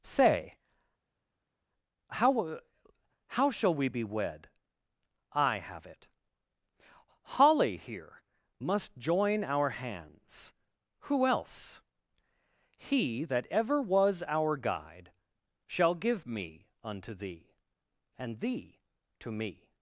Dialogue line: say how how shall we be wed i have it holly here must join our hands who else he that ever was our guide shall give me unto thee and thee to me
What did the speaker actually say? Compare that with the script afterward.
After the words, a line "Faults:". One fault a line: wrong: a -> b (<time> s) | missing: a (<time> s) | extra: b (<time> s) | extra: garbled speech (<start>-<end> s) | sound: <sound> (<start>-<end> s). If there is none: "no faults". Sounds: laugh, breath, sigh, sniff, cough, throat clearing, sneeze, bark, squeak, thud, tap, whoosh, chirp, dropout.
say how how shall we be wed i have it holly here must join our hands who else he that ever was our guide shall give me unto thee and thee to me
Faults:
no faults